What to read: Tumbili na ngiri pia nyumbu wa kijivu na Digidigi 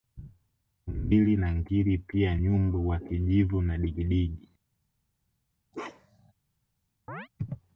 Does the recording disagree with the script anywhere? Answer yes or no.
no